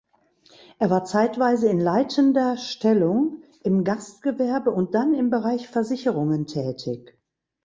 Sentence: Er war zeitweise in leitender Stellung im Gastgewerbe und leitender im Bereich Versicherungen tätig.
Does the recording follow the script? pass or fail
fail